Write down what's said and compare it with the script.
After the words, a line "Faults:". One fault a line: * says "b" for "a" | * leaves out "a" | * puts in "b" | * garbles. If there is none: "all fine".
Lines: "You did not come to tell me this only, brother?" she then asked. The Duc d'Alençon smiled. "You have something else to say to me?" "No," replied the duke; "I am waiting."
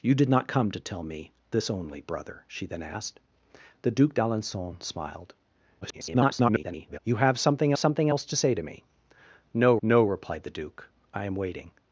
"You did not come to tell me this only, brother?" she then asked. The Duc d'Alençon smiled. [garbled] "You have something something else to say to me?" "No no," replied the duke; "I am waiting."
Faults:
* garbles
* puts in "something"
* puts in "no"